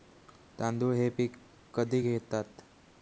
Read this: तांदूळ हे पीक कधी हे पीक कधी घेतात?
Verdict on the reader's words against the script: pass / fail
fail